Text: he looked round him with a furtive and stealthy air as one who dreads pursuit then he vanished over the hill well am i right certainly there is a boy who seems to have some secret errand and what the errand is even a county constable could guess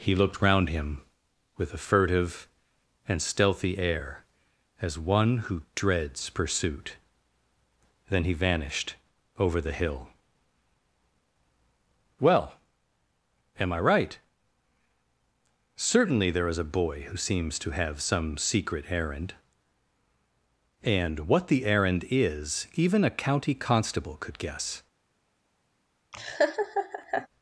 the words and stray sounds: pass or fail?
fail